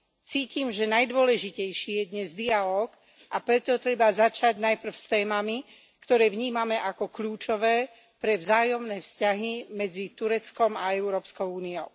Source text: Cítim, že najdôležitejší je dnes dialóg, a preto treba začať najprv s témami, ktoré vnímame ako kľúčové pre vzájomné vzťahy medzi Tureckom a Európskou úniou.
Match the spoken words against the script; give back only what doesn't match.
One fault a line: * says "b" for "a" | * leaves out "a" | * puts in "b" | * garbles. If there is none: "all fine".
all fine